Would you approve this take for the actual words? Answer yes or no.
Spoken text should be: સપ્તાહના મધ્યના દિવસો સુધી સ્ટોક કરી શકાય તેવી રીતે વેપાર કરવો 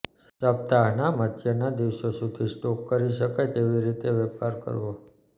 yes